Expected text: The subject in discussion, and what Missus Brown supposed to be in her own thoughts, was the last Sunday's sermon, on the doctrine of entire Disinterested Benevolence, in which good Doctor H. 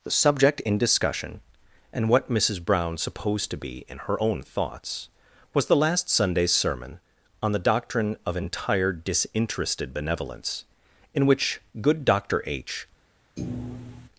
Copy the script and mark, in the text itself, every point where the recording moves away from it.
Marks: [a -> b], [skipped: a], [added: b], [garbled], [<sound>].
The subject in discussion, and what Missus Brown supposed to be in her own thoughts, was the last Sunday's sermon, on the doctrine of entire Disinterested Benevolence, in which good Doctor H. [thud]